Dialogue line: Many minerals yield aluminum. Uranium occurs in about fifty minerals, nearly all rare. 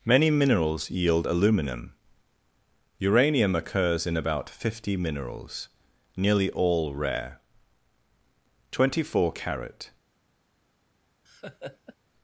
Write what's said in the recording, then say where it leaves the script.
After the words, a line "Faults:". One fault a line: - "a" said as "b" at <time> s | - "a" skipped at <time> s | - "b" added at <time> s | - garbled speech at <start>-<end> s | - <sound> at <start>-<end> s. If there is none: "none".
Many minerals yield aluminum. Uranium occurs in about fifty minerals, nearly all rare. Twenty four carat
Faults:
- "Twenty four carat" added at 8.7 s
- laugh at 11.3-12.0 s